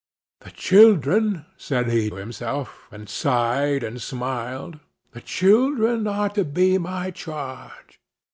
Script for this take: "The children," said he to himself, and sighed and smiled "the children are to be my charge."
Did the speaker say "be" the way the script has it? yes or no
yes